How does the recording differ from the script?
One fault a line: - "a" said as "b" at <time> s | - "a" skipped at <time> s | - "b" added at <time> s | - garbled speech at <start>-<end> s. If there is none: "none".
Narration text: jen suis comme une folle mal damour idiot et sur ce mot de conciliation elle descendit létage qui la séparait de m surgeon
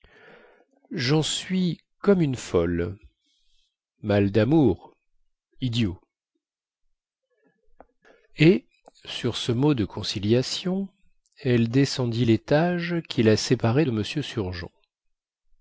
none